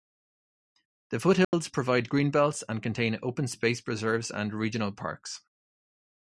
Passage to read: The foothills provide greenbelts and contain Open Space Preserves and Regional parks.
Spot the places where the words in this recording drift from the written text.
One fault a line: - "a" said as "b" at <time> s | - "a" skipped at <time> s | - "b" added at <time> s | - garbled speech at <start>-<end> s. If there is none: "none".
none